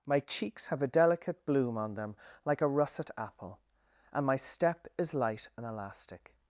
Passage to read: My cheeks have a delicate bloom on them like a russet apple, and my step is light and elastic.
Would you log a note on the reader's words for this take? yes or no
no